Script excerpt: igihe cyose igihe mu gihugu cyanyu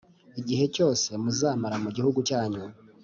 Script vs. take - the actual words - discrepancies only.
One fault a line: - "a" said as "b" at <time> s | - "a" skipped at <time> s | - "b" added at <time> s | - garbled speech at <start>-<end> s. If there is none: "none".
- "igihe" said as "muzamara" at 1.2 s